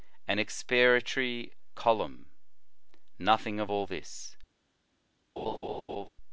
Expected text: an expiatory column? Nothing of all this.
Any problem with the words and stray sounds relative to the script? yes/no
yes